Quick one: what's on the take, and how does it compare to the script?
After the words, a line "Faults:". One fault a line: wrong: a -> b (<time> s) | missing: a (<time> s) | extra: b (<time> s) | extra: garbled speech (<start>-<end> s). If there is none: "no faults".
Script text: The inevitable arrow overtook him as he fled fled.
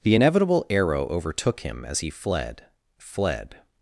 The inevitable arrow overtook him as he fled fled.
Faults:
no faults